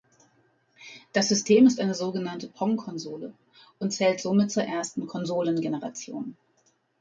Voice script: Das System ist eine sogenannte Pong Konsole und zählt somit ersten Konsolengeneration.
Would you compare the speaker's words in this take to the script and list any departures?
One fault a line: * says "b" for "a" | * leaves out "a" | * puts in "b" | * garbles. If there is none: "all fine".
* puts in "zur"